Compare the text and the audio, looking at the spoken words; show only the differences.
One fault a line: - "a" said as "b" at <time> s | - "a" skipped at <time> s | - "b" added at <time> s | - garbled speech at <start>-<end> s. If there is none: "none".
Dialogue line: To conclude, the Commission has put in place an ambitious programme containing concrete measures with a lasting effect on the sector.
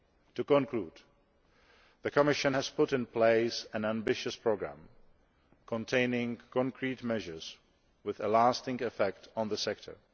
none